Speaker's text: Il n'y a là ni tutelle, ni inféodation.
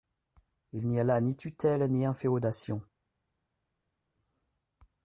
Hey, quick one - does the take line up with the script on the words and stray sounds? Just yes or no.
yes